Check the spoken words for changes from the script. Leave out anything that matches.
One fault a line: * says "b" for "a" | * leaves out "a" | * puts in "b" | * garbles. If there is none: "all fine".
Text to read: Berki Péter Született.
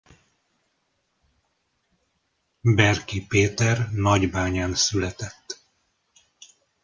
* puts in "Nagybányán"